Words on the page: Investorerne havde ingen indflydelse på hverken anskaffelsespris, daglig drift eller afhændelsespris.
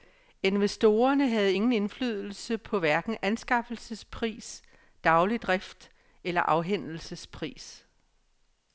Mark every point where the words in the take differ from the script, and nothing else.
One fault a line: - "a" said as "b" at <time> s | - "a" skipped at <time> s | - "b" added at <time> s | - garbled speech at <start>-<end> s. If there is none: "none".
none